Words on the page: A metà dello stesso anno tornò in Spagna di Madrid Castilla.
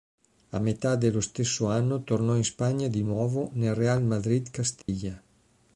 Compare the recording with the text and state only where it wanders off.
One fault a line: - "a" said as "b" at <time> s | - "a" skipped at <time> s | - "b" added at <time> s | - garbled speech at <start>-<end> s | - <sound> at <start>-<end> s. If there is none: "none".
- "nuovo nel Real" added at 3.0 s
- dropout at 4.8-4.9 s